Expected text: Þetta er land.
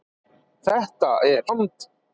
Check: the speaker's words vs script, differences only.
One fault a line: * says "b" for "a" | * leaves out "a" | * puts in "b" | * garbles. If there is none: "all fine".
all fine